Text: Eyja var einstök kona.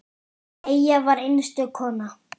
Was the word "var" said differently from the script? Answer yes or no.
no